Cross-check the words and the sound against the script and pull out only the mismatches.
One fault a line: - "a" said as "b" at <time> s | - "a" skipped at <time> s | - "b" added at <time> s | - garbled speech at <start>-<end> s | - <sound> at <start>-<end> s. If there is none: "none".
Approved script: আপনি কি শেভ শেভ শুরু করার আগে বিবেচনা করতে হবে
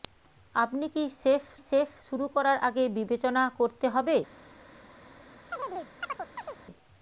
- chirp at 5.5-6.6 s